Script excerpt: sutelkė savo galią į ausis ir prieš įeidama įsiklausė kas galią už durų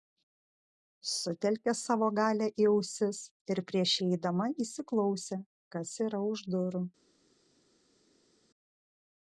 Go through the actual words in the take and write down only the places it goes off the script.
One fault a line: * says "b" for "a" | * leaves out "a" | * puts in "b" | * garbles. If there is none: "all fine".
* says "yra" for "galią"